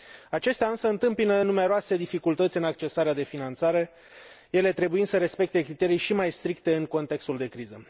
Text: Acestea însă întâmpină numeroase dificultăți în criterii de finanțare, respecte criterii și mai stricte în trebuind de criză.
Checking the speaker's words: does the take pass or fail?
fail